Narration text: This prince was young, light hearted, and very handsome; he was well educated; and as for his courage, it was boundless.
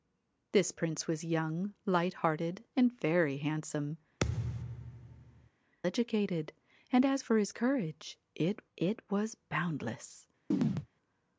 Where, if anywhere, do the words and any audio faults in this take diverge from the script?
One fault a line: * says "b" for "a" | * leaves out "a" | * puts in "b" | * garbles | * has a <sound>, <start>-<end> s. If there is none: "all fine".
* leaves out "he was well"
* has a thud, 4.2-5.5 s
* puts in "it"
* has a chirp, 10.5-10.9 s